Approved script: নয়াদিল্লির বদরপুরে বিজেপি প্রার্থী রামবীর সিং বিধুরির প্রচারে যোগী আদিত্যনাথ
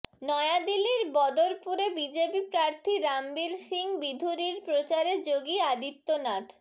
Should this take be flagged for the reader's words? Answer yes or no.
no